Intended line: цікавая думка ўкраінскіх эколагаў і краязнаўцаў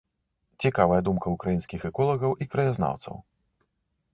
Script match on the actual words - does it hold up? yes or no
yes